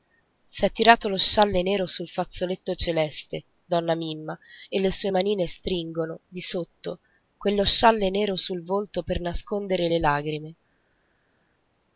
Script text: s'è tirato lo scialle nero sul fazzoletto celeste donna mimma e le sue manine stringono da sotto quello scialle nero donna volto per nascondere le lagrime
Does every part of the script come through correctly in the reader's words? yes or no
no